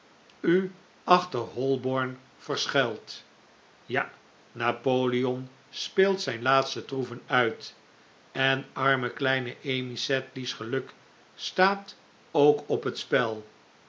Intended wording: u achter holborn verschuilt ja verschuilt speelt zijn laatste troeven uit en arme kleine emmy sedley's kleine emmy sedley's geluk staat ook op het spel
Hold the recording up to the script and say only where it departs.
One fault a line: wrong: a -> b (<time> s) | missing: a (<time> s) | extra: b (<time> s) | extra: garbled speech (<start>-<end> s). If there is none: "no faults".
wrong: verschuilt -> napoleon (4.5 s)
missing: kleine emmy sedley's (10.5 s)